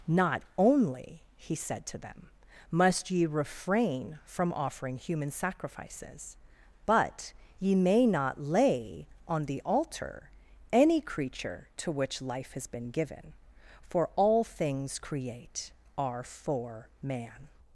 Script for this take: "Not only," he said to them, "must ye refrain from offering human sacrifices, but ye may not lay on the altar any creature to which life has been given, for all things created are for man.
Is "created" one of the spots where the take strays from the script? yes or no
yes